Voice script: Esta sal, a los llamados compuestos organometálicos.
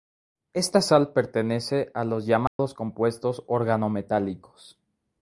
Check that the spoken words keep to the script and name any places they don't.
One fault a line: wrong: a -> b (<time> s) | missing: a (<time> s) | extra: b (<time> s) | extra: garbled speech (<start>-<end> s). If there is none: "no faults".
extra: pertenece (1.1 s)